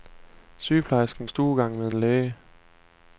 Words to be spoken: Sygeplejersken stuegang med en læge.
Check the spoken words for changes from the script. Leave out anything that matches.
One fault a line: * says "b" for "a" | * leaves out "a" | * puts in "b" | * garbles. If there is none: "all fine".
all fine